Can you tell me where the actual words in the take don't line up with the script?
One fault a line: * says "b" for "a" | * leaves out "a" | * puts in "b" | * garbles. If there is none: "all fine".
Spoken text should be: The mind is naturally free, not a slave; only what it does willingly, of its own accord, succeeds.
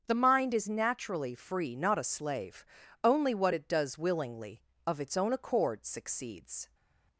all fine